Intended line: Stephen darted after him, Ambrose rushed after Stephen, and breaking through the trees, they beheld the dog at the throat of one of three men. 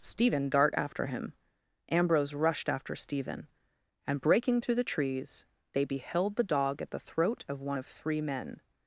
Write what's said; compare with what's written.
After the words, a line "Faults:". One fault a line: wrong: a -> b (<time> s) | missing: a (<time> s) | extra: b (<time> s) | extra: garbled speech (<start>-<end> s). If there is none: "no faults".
Stephen dart after him, Ambrose rushed after Stephen, and breaking through the trees, they beheld the dog at the throat of one of three men.
Faults:
wrong: darted -> dart (0.5 s)